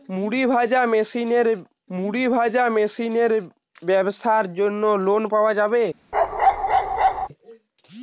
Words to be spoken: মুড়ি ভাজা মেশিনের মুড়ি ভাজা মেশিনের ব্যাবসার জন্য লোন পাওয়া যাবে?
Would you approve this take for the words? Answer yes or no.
yes